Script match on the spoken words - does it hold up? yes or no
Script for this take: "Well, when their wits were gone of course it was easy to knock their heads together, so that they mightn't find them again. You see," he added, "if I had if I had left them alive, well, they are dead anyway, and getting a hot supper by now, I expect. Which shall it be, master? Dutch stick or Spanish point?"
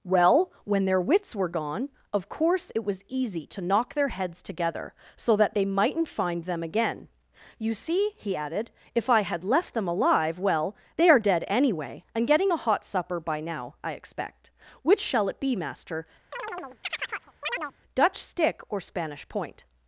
no